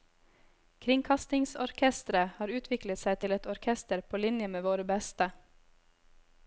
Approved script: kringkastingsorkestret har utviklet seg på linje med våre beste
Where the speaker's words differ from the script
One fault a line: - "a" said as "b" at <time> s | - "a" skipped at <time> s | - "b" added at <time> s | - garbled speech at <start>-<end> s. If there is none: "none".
- "til et orkester" added at 3.2 s